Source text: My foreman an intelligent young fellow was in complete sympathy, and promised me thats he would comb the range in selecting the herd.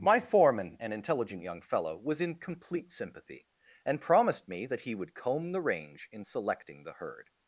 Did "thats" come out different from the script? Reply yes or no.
yes